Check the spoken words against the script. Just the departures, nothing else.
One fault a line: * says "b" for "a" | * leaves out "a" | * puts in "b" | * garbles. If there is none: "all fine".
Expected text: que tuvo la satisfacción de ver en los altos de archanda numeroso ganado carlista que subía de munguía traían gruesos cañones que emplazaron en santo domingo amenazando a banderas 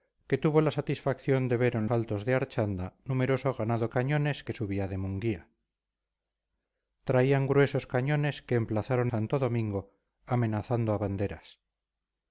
* leaves out "los"
* says "cañones" for "carlista"
* leaves out "en"